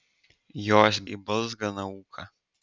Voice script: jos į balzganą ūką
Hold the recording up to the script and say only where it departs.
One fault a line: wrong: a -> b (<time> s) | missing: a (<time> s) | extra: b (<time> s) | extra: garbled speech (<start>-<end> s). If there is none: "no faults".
no faults